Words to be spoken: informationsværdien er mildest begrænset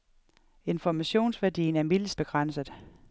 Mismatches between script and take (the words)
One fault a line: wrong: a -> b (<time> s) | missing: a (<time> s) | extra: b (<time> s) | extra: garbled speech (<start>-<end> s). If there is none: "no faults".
no faults